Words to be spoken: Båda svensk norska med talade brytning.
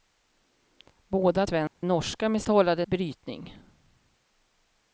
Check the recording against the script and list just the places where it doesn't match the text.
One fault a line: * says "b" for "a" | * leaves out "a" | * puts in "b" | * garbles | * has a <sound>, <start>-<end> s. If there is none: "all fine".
* has a dropout, 1.7-1.8 s